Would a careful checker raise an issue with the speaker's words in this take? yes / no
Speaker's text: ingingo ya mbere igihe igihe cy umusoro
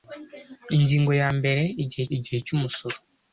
no